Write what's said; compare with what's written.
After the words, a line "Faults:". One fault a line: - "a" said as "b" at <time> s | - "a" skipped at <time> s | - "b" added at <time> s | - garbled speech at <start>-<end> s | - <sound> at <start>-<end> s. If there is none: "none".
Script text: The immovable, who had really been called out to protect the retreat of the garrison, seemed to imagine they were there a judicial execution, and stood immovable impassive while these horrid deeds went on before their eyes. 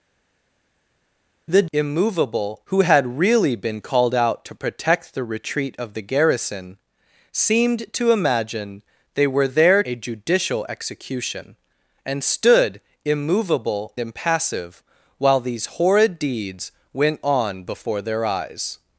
The immovable, who had really been called out to protect the retreat of the garrison, seemed to imagine they were there a judicial execution, and stood immovable impassive while these horrid deeds went on before their eyes.
Faults:
none